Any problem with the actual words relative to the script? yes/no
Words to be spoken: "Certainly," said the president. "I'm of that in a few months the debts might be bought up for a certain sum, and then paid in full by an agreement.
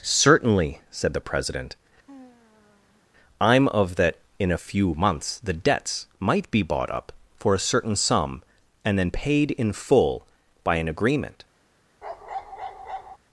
no